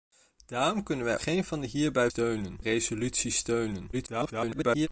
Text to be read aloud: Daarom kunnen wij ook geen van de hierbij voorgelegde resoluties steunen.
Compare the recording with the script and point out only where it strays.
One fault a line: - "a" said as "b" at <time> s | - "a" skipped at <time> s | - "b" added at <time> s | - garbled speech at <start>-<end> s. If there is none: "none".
- "ook" skipped at 1.2 s
- "voorgelegde" said as "steunen" at 2.1 s
- garbled speech at 3.9-4.9 s